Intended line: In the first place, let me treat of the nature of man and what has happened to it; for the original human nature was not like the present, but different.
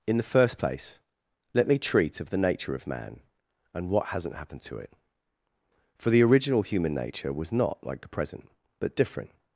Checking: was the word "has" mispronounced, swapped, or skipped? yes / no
yes